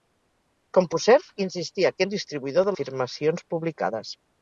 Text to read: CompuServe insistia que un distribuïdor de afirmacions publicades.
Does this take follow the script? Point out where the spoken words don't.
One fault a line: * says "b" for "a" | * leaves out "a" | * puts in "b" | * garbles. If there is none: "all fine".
all fine